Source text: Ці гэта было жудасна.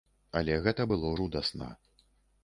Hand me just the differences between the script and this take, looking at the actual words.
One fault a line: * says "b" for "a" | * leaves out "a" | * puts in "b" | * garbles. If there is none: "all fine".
* says "Але" for "Ці"